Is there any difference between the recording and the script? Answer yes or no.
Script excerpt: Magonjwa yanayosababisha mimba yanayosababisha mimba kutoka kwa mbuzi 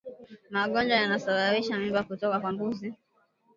yes